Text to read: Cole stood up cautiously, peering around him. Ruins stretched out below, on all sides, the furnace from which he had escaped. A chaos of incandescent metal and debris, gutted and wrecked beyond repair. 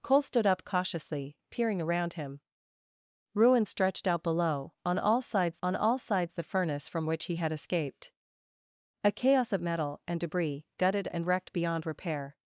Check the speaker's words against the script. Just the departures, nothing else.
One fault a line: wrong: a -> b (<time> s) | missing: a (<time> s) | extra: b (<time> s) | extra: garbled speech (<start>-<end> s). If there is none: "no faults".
extra: on all sides (5.6 s)
missing: incandescent (9.6 s)